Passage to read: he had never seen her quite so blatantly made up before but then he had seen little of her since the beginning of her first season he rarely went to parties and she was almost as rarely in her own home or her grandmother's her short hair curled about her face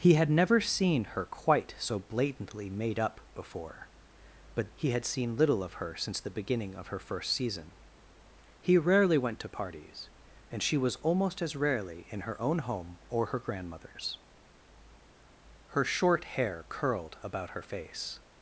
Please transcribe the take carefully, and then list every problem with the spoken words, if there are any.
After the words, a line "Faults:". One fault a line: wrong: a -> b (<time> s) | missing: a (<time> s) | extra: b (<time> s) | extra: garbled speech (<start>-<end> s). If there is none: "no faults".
he had never seen her quite so blatantly made up before but he had seen little of her since the beginning of her first season he rarely went to parties and she was almost as rarely in her own home or her grandmother's her short hair curled about her face
Faults:
missing: then (4.7 s)